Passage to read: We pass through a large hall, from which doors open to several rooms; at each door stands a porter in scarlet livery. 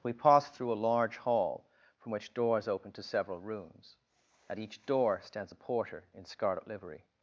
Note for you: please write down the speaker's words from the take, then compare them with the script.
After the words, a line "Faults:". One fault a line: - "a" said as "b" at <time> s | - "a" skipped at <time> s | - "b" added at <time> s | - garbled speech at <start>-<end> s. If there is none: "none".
We pass through a large hall, from which doors open to several rooms; at each door stands a porter in scarlet livery.
Faults:
none